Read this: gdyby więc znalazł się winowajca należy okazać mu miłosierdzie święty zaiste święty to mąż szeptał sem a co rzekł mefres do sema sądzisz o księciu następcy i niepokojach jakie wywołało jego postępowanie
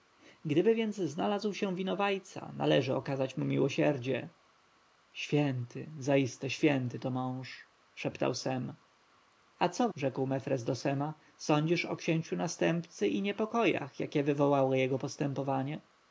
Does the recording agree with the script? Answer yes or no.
yes